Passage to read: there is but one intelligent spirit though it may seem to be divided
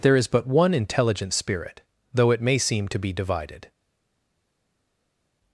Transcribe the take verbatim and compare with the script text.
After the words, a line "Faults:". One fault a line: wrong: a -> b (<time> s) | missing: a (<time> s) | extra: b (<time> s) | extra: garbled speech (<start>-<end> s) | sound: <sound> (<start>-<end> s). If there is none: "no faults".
there is but one intelligent spirit though it may seem to be divided
Faults:
no faults